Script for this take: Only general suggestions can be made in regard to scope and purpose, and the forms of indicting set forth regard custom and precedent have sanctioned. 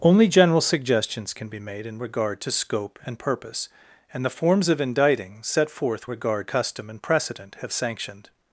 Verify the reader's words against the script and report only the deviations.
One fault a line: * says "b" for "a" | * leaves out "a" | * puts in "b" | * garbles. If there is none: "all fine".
all fine